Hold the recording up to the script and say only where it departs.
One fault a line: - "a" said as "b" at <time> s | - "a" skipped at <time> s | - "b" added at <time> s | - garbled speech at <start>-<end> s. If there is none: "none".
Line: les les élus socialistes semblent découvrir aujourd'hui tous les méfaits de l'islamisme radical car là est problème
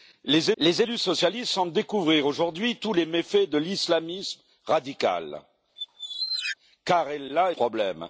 none